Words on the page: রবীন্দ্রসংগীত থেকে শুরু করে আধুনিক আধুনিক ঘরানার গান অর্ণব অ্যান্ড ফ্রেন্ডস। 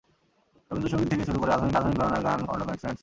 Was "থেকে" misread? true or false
false